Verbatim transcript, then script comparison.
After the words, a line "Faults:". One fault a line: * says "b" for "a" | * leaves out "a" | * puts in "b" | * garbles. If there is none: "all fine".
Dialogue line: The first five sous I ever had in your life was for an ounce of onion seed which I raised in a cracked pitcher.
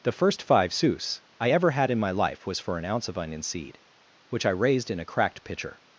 The first five sous I ever had in my life was for an ounce of onion seed which I raised in a cracked pitcher.
Faults:
* says "my" for "your"